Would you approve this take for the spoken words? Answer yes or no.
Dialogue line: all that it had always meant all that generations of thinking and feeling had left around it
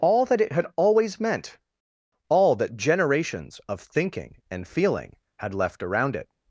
yes